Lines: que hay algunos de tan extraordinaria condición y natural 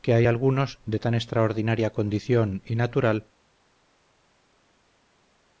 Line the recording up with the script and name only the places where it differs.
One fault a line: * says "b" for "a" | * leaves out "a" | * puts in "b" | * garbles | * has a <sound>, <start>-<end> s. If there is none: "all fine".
all fine